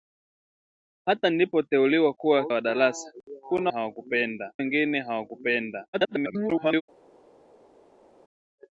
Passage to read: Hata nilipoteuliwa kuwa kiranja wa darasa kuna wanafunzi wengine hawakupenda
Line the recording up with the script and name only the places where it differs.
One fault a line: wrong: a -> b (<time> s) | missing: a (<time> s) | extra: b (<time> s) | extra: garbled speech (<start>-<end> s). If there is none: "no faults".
missing: kiranja (2.5 s)
wrong: wanafunzi -> hawakupenda (3.7 s)
extra: garbled speech (5.9-6.8 s)